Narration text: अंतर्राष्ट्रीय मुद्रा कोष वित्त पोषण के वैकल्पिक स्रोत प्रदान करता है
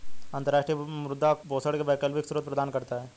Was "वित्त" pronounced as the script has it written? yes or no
no